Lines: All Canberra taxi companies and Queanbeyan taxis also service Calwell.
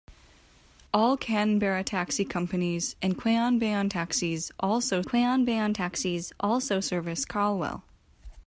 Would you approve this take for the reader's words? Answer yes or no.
no